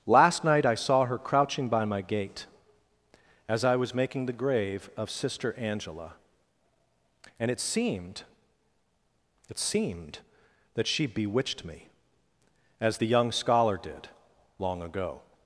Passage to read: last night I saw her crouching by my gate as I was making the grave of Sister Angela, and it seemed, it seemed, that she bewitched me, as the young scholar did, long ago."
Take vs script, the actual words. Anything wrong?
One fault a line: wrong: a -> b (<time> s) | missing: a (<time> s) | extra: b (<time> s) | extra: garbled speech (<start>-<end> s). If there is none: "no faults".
no faults